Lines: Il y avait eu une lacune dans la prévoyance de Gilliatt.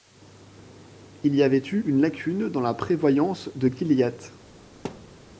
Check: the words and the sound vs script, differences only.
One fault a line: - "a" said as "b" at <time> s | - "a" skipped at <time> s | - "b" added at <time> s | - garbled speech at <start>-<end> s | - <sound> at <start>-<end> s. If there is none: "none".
- thud at 4.8-5.2 s